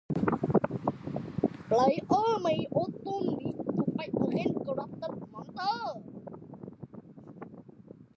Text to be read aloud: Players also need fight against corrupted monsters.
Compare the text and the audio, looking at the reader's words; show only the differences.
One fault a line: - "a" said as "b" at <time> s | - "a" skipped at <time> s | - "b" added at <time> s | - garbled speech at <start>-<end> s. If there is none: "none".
- "may" added at 2.4 s
- "to" added at 3.6 s